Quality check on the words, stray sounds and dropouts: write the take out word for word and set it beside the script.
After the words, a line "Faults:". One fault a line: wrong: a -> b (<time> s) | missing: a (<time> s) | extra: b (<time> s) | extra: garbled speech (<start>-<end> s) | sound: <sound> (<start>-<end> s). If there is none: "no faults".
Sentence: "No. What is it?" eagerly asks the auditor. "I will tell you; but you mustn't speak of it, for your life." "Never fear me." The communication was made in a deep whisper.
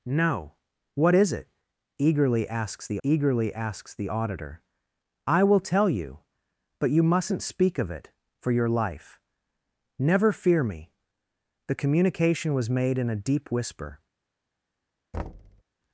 "No. What is it?" eagerly asks the eagerly asks the auditor. "I will tell you; but you mustn't speak of it, for your life." "Never fear me." The communication was made in a deep whisper.
Faults:
extra: eagerly asks the (3.0 s)
sound: thud (15.1-15.6 s)